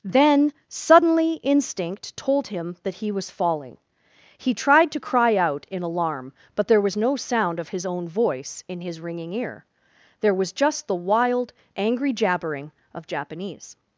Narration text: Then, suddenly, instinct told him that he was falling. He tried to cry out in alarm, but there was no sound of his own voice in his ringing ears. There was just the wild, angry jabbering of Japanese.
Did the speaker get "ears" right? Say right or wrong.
wrong